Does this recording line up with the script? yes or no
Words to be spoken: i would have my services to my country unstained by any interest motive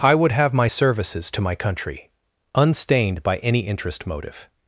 yes